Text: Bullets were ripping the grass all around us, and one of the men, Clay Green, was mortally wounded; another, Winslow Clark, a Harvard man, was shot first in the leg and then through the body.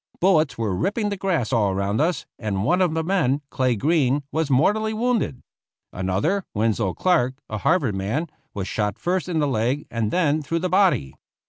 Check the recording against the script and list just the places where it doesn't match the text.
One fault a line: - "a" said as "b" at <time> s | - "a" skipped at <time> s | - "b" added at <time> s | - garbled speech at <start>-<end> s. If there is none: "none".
none